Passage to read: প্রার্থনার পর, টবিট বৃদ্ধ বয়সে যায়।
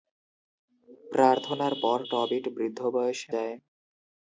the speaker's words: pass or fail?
pass